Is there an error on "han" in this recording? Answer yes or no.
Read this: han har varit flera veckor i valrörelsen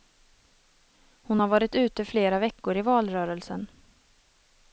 yes